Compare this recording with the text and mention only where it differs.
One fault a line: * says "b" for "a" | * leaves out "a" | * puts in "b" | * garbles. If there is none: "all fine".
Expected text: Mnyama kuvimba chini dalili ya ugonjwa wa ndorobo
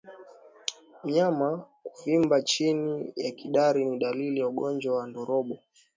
* puts in "ya kidari ni"